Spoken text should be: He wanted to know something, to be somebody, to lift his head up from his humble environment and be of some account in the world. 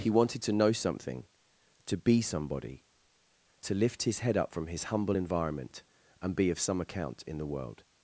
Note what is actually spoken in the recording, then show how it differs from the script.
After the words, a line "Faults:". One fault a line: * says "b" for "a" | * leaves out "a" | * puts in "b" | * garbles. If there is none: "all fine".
He wanted to know something, to be somebody, to lift his head up from his humble environment and be of some account in the world.
Faults:
all fine